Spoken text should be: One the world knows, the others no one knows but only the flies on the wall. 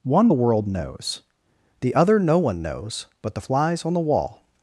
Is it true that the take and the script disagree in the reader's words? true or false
true